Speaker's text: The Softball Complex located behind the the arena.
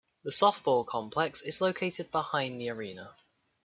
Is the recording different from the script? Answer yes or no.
yes